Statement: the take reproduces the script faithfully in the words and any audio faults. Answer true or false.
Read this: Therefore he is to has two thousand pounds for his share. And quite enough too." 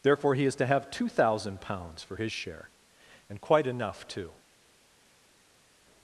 false